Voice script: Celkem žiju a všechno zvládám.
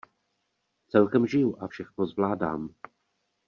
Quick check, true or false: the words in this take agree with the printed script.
true